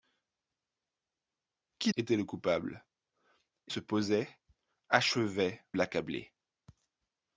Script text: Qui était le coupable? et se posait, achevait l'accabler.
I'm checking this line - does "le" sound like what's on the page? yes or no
yes